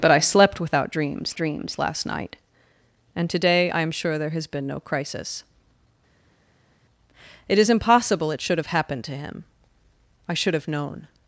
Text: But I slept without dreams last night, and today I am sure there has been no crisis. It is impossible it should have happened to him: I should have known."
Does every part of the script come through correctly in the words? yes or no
no